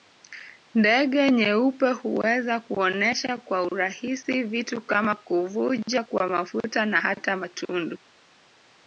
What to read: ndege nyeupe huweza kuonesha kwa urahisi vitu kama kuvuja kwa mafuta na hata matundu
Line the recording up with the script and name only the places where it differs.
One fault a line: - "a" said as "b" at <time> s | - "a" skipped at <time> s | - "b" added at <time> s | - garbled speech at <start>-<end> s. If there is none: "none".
none